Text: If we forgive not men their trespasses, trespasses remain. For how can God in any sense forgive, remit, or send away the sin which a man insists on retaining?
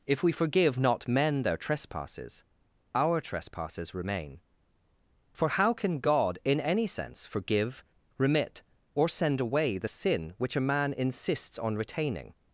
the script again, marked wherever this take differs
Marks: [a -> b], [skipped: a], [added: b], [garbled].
If we forgive not men their trespasses, [added: our] trespasses remain. For how can God in any sense forgive, remit, or send away the sin which a man insists on retaining?